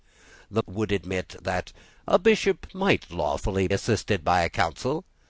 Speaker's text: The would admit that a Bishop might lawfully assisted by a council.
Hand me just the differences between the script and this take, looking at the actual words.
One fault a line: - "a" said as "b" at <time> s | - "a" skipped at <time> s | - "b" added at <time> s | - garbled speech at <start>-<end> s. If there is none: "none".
none